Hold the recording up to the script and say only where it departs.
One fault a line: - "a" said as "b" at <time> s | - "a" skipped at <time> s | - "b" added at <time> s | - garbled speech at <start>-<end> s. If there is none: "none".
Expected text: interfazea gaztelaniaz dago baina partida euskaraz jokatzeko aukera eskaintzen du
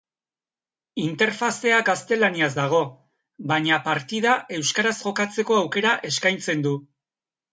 none